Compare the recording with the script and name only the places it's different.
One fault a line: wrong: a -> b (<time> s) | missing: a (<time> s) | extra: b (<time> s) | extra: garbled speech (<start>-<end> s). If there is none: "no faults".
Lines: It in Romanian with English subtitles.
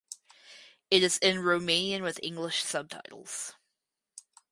extra: is (1.0 s)